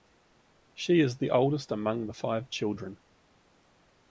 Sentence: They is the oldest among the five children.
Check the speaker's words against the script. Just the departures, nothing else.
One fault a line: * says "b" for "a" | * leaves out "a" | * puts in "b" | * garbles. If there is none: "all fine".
* says "She" for "They"